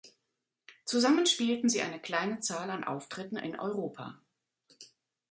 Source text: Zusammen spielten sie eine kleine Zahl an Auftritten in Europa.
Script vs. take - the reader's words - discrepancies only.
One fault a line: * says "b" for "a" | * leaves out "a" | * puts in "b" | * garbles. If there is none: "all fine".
all fine